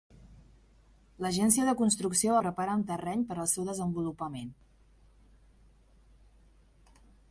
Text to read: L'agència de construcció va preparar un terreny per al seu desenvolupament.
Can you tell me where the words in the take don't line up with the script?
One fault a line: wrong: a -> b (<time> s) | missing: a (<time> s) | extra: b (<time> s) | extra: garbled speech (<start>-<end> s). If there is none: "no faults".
missing: va (2.4 s)